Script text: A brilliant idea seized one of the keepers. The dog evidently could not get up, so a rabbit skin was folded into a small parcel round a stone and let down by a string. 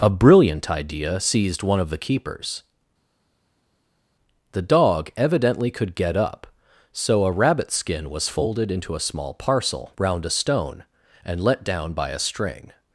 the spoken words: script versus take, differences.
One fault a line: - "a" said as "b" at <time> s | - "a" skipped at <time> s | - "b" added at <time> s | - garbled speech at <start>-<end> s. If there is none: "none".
- "not" skipped at 5.9 s